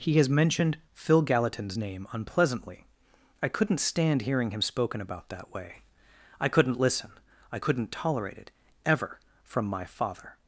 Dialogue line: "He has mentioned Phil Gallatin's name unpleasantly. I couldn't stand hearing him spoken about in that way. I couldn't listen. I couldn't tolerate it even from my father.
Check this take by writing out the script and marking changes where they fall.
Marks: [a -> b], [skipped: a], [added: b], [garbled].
"He has mentioned Phil Gallatin's name unpleasantly. I couldn't stand hearing him spoken about [skipped: in] that way. I couldn't listen. I couldn't tolerate it [even -> ever] from my father.